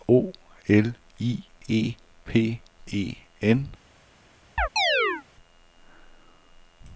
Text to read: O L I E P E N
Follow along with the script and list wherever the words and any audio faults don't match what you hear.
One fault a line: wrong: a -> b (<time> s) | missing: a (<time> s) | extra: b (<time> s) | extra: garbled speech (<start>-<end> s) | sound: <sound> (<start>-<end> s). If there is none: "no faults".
sound: chirp (4.6-5.2 s)